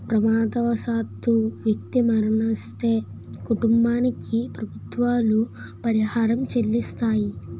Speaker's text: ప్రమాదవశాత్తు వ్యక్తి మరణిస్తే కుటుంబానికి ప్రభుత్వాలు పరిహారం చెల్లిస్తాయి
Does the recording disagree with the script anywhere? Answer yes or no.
no